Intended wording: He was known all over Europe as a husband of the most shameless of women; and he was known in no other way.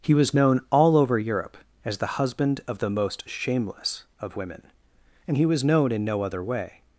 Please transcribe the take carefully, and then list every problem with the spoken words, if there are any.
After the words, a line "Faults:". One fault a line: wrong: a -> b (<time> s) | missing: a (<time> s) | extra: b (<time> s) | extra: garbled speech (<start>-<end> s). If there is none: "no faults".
He was known all over Europe as the husband of the most shameless of women; and he was known in no other way.
Faults:
wrong: a -> the (2.0 s)